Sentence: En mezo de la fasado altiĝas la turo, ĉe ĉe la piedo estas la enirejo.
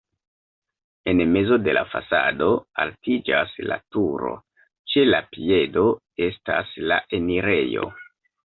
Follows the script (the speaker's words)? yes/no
no